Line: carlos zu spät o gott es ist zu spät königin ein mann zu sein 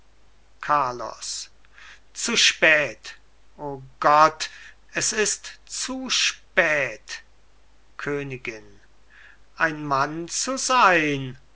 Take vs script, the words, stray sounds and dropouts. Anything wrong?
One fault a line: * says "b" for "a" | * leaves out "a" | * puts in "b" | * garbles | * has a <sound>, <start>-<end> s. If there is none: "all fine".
all fine